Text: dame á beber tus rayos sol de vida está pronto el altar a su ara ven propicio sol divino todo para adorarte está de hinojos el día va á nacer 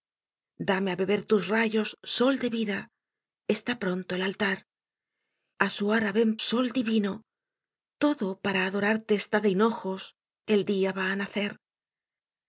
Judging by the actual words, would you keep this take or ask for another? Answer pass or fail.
fail